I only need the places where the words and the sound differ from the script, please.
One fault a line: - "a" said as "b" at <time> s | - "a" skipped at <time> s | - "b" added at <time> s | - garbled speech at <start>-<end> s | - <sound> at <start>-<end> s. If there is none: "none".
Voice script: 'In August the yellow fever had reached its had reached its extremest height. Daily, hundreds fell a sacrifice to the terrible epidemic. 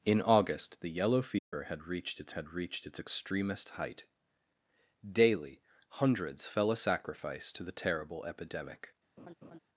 - dropout at 1.4-1.5 s
- laugh at 9.2-9.6 s